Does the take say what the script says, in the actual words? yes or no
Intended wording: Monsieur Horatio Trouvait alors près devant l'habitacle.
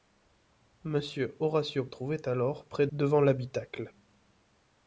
yes